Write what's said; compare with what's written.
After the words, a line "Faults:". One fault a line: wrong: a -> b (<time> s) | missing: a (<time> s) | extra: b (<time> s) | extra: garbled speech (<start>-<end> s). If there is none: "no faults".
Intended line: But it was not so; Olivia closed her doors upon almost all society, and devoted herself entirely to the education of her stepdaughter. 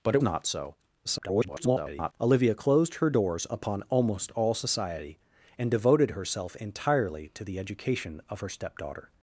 But it not so; [garbled] Olivia closed her doors upon almost all society, and devoted herself entirely to the education of her stepdaughter.
Faults:
missing: was (0.2 s)
extra: garbled speech (1.0-2.1 s)